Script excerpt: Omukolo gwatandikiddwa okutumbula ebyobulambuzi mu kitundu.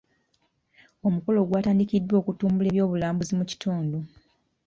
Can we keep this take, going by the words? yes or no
yes